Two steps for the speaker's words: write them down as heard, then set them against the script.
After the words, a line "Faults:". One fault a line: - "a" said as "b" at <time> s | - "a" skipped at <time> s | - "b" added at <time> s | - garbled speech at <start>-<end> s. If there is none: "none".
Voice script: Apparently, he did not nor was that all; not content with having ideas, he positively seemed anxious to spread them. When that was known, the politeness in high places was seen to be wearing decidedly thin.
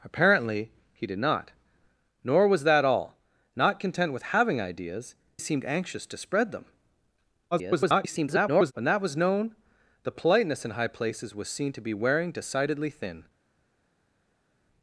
Apparently, he did not nor was that all; not content with having ideas, seemed anxious to spread them. [garbled] When that was known, the politeness in high places was seen to be wearing decidedly thin.
Faults:
- "he positively" skipped at 5.2 s
- garbled speech at 7.5-8.7 s